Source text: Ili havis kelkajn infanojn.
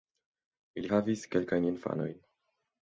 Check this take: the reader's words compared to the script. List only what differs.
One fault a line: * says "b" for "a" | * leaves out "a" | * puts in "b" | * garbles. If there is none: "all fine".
all fine